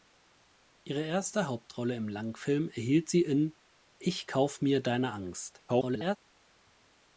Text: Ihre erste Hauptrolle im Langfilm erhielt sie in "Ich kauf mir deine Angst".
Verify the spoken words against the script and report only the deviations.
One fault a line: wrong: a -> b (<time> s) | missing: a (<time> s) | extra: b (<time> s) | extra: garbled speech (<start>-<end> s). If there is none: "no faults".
extra: garbled speech (5.7-6.2 s)